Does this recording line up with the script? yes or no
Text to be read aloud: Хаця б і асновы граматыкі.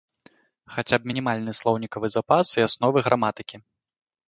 no